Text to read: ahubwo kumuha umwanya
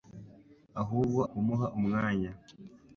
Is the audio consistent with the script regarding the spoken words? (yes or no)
yes